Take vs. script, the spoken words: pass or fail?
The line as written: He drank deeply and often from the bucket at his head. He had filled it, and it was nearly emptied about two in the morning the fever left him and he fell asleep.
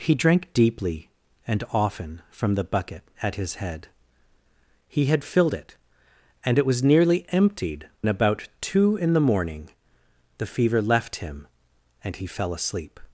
pass